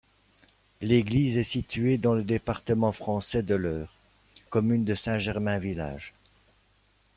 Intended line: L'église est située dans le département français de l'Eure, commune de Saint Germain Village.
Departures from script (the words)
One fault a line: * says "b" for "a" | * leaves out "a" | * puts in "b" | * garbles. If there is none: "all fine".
all fine